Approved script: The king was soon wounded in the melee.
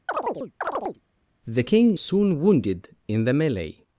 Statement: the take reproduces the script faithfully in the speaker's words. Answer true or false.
false